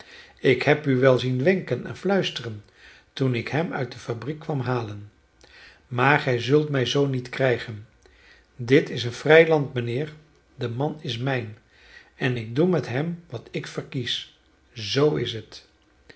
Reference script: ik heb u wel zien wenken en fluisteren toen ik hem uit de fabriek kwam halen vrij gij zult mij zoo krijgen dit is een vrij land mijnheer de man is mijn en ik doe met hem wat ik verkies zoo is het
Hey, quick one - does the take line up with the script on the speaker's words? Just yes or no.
no